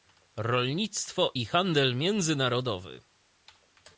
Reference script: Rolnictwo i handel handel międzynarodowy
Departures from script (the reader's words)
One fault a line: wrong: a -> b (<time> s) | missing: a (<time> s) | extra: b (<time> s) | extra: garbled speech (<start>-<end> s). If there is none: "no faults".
missing: handel (1.9 s)